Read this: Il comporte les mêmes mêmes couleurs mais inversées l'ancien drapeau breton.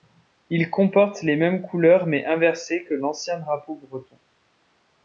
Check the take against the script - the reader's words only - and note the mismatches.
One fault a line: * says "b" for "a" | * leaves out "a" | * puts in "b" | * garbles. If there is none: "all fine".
* leaves out "mêmes"
* puts in "que"